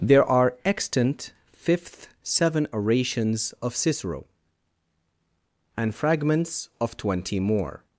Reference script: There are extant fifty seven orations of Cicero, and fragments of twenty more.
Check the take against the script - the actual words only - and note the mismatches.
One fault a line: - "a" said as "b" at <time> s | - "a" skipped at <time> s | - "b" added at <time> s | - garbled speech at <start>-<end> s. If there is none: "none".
- "fifty" said as "fifth" at 1.5 s